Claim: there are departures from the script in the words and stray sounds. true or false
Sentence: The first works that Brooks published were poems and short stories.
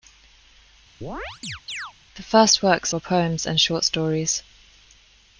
true